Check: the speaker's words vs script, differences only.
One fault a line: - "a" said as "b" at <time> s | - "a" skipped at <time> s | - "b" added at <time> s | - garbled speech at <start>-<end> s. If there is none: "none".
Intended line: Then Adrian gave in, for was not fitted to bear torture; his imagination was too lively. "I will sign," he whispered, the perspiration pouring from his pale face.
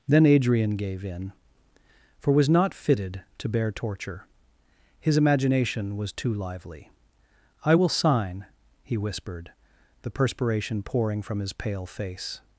none